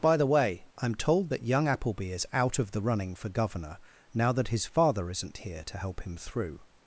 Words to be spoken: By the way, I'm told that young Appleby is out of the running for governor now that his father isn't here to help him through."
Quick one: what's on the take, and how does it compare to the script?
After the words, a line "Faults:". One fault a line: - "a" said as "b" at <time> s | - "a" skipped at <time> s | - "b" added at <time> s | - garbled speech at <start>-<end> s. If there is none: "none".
By the way, I'm told that young Appleby is out of the running for governor now that his father isn't here to help him through."
Faults:
none